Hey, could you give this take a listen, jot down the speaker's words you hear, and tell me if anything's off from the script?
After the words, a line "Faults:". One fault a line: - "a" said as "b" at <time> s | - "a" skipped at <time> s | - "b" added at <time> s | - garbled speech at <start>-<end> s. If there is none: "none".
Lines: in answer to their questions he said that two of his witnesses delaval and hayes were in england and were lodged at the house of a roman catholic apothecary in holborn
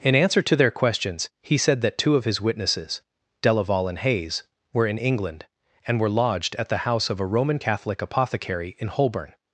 in answer to their questions he said that two of his witnesses delaval and hayes were in england and were lodged at the house of a roman catholic apothecary in holborn
Faults:
none